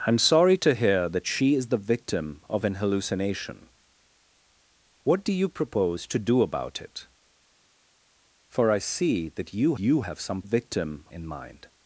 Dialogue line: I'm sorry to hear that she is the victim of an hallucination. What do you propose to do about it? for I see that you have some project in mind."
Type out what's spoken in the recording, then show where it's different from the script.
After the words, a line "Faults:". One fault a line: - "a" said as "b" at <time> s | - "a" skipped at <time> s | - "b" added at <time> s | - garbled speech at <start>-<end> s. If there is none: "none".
I'm sorry to hear that she is the victim of an hallucination. What do you propose to do about it? for I see that you you have some victim in mind."
Faults:
- "you" added at 9.8 s
- "project" said as "victim" at 10.4 s